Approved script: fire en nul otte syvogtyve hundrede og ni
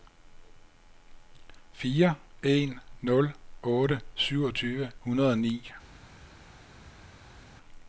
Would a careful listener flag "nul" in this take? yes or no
no